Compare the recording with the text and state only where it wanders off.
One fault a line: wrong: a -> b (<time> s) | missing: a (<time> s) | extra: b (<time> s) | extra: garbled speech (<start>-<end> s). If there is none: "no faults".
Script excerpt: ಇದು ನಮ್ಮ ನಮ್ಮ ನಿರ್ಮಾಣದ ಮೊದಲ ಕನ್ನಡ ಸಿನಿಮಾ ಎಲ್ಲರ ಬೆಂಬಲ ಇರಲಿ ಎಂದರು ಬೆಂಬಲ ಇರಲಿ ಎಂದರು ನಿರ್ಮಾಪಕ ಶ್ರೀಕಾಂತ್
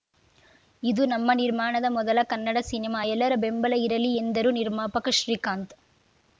missing: ನಮ್ಮ (1.3 s)
missing: ಬೆಂಬಲ ಇರಲಿ ಎಂದರು (4.5 s)